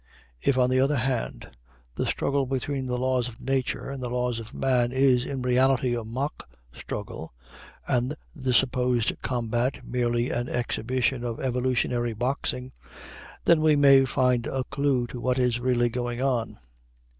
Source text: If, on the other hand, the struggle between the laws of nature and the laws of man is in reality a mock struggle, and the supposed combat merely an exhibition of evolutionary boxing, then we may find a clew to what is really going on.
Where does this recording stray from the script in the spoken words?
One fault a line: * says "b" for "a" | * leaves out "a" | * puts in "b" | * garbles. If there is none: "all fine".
all fine